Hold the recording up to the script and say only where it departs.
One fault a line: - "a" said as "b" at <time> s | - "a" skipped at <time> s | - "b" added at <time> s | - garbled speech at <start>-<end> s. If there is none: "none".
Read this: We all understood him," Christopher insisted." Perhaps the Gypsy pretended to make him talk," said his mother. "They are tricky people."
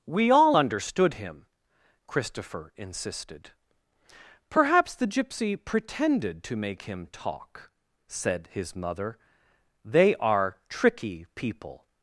none